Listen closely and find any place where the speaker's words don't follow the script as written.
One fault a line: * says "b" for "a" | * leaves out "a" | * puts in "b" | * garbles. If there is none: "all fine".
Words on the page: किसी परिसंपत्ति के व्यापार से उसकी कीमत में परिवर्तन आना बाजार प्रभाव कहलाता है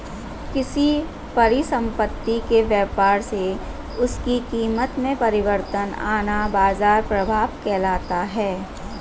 all fine